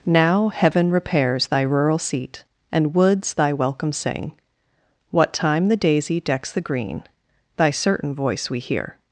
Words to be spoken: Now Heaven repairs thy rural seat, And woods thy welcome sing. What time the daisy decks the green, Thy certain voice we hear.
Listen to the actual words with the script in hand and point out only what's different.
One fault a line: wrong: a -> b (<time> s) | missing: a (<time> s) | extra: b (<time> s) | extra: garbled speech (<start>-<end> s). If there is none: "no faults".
no faults